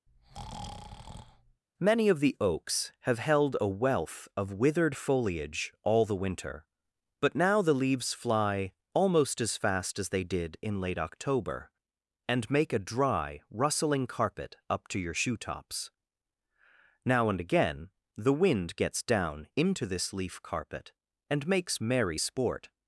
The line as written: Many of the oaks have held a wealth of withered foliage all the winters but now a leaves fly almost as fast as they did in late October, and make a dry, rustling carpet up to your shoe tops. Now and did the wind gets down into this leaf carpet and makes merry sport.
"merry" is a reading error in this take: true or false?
false